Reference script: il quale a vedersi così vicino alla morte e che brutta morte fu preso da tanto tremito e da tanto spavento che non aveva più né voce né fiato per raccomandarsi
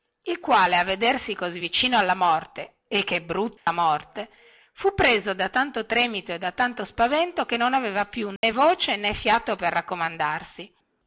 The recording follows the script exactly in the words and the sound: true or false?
false